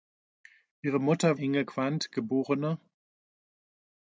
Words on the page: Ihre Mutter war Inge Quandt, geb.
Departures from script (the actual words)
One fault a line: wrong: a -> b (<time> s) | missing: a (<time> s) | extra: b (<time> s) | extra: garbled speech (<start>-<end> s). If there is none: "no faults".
missing: war (1.4 s)